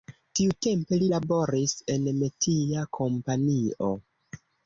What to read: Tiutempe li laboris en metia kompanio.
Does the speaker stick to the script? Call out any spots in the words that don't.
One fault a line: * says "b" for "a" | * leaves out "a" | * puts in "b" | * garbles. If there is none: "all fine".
all fine